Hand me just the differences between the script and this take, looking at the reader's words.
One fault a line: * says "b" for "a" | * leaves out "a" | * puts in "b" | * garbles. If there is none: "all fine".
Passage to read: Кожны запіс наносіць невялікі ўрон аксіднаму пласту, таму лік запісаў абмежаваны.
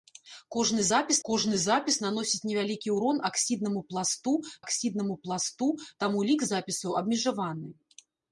* puts in "кожны запіс"
* puts in "аксіднаму пласту"